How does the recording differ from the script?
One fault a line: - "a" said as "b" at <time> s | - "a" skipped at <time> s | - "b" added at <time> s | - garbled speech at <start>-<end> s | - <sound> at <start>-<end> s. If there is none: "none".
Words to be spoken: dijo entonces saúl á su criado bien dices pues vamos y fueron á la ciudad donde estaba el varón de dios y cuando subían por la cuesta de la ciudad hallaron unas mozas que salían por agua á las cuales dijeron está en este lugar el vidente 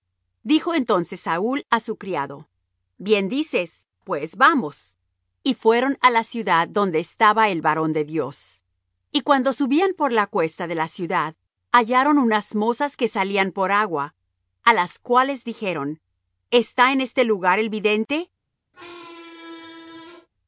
- squeak at 18.7-20.3 s